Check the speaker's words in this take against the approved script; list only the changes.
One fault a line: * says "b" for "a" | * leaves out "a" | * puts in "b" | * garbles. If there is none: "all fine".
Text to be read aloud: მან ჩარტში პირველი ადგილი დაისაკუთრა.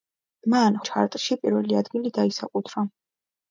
all fine